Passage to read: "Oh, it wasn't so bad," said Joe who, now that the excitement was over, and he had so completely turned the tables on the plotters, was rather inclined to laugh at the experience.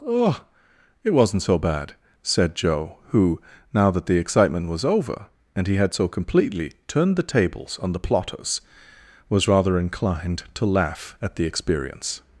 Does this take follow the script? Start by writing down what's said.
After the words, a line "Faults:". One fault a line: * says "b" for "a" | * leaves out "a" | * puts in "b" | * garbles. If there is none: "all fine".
"Oh, it wasn't so bad," said Joe who, now that the excitement was over, and he had so completely turned the tables on the plotters, was rather inclined to laugh at the experience.
Faults:
all fine